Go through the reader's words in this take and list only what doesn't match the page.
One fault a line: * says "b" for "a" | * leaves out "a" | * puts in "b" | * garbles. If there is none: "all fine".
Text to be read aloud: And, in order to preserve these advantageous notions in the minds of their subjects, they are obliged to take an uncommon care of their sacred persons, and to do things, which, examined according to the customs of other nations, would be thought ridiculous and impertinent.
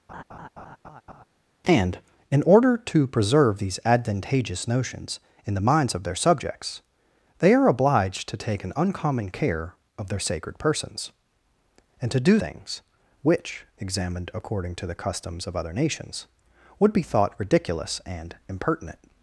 all fine